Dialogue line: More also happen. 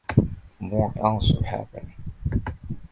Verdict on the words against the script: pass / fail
pass